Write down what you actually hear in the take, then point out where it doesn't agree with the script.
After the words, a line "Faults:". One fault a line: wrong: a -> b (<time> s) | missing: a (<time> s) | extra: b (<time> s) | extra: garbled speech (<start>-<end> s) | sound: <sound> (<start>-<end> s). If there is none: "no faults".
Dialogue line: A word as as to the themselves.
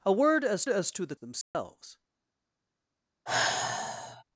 A word as as to the themselves.
Faults:
sound: dropout (1.4-1.5 s)
sound: sigh (3.3-4.2 s)